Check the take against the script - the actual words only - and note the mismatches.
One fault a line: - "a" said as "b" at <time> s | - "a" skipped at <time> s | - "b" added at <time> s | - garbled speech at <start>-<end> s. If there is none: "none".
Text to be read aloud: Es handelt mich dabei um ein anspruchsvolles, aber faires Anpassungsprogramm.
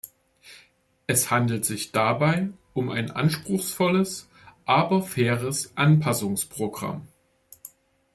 - "mich" said as "sich" at 1.6 s